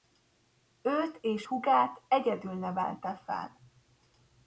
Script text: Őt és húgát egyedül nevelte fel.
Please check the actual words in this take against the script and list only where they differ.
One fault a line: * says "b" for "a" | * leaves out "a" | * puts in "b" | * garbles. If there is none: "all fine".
all fine